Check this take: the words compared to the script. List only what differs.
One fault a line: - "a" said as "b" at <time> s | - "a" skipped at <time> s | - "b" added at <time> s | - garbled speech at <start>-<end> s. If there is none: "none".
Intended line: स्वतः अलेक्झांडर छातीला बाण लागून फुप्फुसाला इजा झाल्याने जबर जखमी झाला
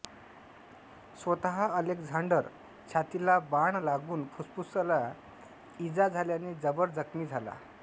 none